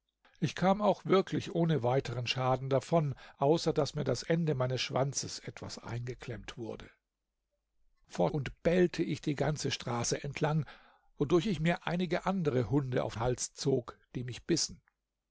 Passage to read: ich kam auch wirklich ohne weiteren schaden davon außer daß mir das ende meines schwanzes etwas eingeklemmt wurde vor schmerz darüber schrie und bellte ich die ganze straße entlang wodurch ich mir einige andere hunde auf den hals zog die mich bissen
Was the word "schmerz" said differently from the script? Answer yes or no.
yes